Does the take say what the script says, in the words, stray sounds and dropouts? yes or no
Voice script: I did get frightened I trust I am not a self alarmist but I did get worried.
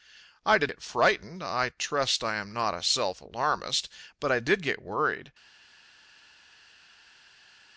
yes